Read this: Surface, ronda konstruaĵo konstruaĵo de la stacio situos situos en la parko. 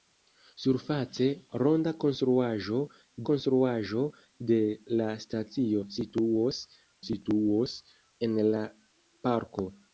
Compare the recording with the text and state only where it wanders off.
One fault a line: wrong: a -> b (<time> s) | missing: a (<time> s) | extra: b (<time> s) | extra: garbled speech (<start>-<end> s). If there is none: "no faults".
no faults